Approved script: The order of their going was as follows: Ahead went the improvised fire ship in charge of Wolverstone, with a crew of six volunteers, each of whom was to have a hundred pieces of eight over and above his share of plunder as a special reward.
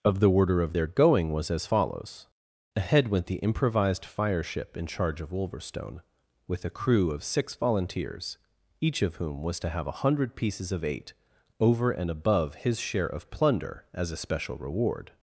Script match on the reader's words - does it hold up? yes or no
no